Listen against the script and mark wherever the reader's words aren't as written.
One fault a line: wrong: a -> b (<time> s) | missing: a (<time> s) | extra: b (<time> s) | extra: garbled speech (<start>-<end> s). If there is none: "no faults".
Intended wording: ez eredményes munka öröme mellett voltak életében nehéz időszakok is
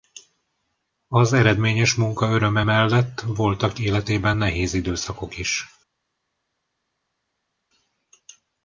wrong: ez -> az (1.1 s)